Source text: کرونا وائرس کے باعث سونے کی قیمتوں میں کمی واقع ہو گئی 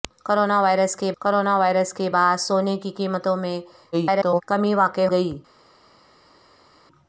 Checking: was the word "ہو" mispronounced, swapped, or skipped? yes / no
yes